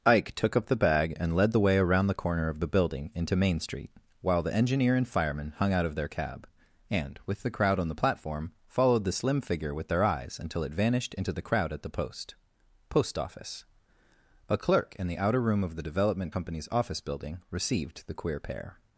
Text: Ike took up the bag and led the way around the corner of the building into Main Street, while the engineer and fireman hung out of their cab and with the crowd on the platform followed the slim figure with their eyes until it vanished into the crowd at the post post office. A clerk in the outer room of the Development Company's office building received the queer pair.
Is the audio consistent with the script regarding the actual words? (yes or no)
yes